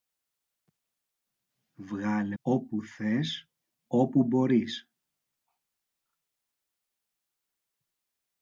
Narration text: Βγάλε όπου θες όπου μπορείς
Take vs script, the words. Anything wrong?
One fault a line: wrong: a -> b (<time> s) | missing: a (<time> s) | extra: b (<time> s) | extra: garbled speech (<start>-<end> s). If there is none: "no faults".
no faults